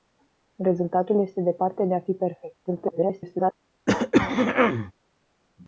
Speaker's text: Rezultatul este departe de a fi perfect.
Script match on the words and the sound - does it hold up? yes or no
no